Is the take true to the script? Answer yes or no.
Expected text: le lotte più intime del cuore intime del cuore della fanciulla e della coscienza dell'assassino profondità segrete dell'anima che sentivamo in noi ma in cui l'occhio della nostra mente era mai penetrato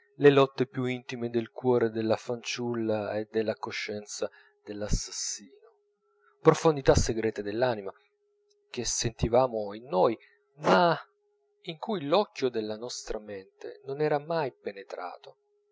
no